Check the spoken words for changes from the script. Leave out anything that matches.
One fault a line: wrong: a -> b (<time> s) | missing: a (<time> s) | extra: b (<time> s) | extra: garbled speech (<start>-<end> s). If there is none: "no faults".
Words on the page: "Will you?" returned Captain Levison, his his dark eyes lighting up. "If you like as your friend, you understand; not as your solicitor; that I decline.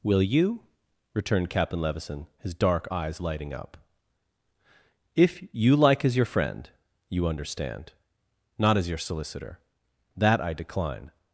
missing: his (2.5 s)